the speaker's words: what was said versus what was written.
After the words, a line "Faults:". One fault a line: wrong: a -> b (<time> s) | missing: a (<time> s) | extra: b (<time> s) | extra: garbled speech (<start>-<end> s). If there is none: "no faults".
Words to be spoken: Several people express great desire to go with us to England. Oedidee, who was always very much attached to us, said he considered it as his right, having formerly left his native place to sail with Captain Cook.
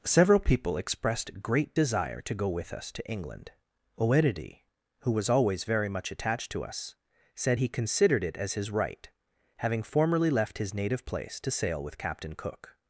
Several people expressed great desire to go with us to England. Oedidee, who was always very much attached to us, said he considered it as his right, having formerly left his native place to sail with Captain Cook.
Faults:
wrong: express -> expressed (0.8 s)